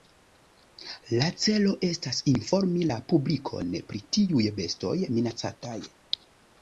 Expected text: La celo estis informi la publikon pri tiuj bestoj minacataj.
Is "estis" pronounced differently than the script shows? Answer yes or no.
yes